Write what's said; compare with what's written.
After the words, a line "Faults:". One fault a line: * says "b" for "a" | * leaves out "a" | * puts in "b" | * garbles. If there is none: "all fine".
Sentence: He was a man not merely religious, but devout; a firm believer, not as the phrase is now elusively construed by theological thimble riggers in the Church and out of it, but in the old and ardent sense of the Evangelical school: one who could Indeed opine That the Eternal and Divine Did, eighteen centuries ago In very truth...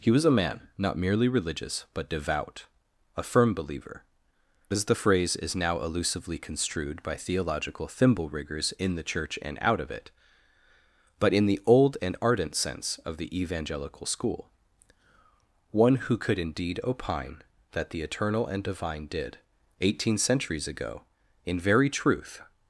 He was a man not merely religious, but devout; a firm believer, as the phrase is now elusively construed by theological thimble riggers in the Church and out of it, but in the old and ardent sense of the Evangelical school: one who could Indeed opine That the Eternal and Divine Did, eighteen centuries ago In very truth...
Faults:
* leaves out "not"